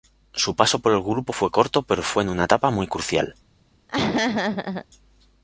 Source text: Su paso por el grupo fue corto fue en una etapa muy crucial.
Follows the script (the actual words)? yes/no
no